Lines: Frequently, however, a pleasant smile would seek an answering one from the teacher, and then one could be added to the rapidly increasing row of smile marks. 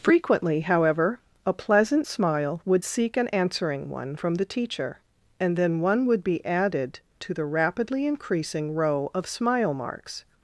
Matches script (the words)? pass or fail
fail